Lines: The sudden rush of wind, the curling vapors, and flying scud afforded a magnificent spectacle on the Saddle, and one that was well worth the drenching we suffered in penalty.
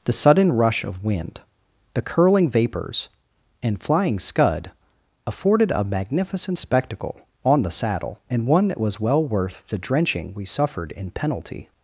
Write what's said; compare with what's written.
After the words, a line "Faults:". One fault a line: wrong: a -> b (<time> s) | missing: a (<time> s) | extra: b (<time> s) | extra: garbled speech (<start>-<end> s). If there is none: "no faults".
The sudden rush of wind, the curling vapors, and flying scud afforded a magnificent spectacle on the Saddle, and one that was well worth the drenching we suffered in penalty.
Faults:
no faults